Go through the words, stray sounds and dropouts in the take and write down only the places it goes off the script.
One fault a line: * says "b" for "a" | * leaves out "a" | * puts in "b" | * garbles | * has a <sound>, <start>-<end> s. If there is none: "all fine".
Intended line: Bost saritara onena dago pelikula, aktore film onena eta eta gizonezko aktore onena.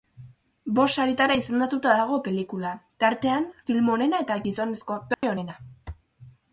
* says "izendatuta" for "onena"
* says "tartean" for "aktore"
* leaves out "eta"
* has a dropout, 5.1-5.2 s